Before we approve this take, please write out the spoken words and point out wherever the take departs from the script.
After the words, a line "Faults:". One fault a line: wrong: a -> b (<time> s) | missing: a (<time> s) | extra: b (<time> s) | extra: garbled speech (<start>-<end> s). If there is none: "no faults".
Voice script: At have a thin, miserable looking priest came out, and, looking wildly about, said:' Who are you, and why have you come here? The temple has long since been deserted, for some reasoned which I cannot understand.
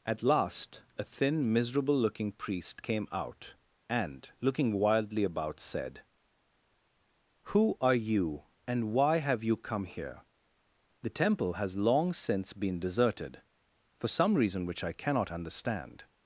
At last a thin, miserable looking priest came out, and, looking wildly about, said:' Who are you, and why have you come here? The temple has long since been deserted, for some reason which I cannot understand.
Faults:
wrong: have -> last (0.2 s)
wrong: reasoned -> reason (14.3 s)